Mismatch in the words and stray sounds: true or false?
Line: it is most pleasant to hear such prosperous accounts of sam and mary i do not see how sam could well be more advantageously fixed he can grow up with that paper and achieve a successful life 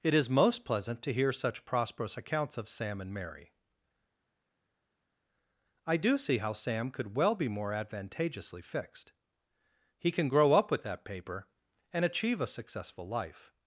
true